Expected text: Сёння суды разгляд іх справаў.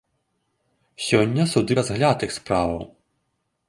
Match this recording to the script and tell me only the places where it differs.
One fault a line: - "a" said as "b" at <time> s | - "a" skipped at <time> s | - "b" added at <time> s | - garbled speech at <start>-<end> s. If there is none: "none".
none